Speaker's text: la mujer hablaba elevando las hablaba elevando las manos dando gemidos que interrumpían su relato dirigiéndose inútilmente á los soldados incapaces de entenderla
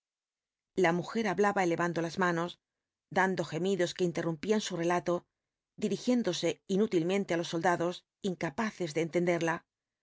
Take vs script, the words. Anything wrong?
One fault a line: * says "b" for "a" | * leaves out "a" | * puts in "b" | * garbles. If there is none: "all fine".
* leaves out "hablaba elevando las"